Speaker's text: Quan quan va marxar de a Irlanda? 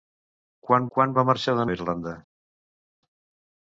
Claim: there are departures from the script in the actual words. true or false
false